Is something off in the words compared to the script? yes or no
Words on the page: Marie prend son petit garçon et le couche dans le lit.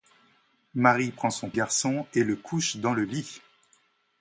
yes